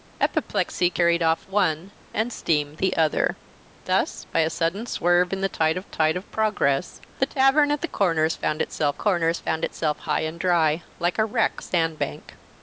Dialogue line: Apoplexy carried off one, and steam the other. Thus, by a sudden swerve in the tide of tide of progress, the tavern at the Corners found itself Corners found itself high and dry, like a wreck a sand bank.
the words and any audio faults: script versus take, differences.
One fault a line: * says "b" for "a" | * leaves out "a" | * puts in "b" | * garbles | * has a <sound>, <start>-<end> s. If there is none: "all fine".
all fine